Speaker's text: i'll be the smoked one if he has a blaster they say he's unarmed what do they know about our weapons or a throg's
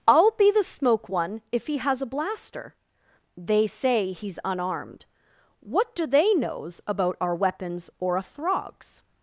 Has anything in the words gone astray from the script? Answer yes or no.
yes